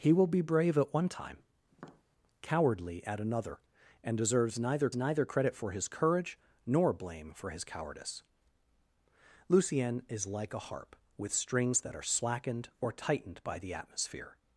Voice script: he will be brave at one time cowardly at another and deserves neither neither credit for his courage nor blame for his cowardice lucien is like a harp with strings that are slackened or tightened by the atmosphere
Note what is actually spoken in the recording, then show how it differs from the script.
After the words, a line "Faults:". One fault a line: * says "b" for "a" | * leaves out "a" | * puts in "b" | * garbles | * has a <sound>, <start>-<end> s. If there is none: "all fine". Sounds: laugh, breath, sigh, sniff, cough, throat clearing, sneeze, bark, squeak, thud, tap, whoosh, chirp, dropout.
he will be brave at one time cowardly at another and deserves neither neither credit for his courage nor blame for his cowardice lucien is like a harp with strings that are slackened or tightened by the atmosphere
Faults:
* has a tap, 1.7-2.0 s